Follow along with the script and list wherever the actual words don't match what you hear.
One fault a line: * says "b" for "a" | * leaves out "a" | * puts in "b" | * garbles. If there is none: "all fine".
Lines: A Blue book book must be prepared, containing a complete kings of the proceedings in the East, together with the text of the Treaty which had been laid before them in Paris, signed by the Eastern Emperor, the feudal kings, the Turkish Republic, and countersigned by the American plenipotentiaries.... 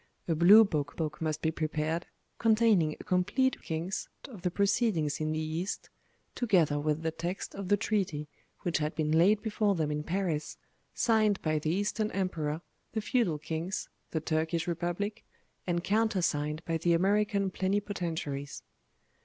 all fine